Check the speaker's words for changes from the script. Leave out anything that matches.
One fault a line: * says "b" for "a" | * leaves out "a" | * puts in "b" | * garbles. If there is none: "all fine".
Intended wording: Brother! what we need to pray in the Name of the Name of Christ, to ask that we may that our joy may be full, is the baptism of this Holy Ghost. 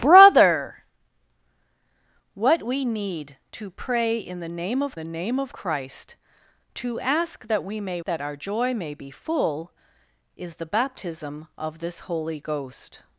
all fine